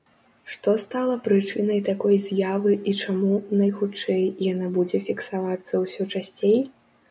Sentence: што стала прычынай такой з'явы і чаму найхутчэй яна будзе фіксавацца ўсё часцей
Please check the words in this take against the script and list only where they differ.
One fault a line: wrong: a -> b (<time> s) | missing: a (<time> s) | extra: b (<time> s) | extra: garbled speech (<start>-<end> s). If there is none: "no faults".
no faults